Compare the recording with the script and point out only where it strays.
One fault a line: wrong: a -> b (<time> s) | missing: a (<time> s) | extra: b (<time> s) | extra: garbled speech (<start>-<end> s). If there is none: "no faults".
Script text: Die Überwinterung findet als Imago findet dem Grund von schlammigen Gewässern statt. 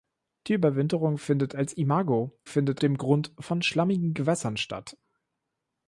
no faults